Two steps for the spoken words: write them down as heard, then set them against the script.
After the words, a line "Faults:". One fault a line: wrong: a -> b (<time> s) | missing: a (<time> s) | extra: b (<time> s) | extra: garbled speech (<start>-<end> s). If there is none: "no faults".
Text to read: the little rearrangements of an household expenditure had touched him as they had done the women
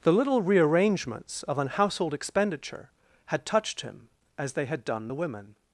the little rearrangements of an household expenditure had touched him as they had done the women
Faults:
no faults